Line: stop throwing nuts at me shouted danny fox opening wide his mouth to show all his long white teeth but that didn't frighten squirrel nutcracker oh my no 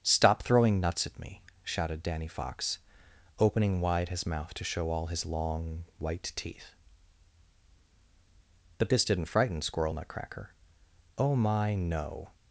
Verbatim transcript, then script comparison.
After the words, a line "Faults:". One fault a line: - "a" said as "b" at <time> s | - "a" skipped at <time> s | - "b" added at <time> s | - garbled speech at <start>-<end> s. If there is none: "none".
stop throwing nuts at me shouted danny fox opening wide his mouth to show all his long white teeth but this didn't frighten squirrel nutcracker oh my no
Faults:
- "that" said as "this" at 8.9 s